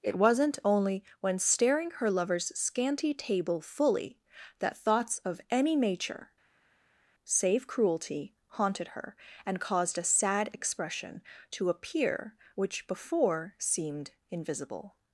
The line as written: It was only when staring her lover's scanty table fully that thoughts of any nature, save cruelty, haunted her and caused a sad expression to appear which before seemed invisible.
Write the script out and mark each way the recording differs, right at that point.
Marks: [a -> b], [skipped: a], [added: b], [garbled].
It [was -> wasn't] only when staring her lover's scanty table fully that thoughts of any nature, save cruelty, haunted her and caused a sad expression to appear which before seemed invisible.